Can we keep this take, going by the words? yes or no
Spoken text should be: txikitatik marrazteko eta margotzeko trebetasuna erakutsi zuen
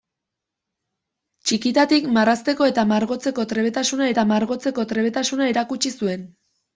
no